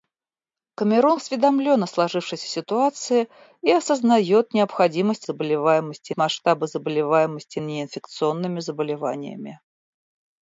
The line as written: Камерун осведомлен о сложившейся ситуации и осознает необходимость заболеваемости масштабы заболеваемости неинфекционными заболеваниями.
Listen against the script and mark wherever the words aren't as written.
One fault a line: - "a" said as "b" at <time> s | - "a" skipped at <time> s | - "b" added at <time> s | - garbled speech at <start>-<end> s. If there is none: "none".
none